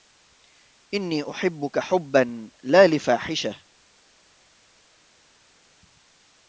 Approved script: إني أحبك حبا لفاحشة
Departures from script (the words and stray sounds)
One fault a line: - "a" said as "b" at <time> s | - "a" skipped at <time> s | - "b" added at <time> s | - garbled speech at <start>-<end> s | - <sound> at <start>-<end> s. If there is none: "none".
- "لا" added at 2.6 s